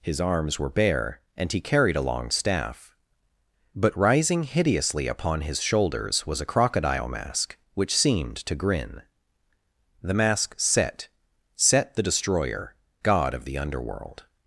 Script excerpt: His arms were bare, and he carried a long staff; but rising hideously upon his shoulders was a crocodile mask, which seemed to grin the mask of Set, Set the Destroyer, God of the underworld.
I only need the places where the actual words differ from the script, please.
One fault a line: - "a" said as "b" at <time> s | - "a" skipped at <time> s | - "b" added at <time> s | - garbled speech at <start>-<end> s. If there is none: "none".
- "of" skipped at 10.5 s